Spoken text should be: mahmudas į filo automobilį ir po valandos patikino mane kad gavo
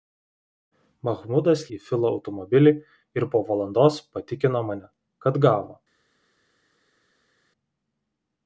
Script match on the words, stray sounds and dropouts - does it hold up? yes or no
yes